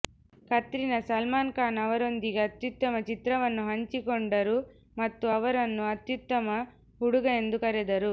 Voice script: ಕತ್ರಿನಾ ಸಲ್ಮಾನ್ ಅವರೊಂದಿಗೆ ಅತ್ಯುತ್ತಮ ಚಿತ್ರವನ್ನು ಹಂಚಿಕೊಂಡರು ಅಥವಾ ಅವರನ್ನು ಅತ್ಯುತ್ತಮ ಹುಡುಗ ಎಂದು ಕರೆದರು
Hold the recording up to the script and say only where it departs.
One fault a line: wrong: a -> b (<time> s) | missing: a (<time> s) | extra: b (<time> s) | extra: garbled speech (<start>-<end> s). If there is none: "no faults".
extra: ಖಾನ್ (1.5 s)
wrong: ಅಥವಾ -> ಮತ್ತು (5.0 s)